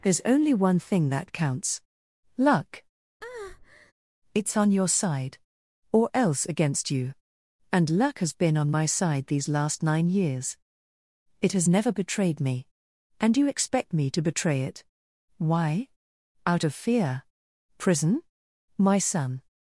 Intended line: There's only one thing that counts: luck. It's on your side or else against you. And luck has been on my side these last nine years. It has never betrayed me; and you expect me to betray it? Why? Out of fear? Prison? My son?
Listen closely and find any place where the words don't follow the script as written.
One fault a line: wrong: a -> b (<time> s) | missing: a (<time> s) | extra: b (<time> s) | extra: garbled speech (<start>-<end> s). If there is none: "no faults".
no faults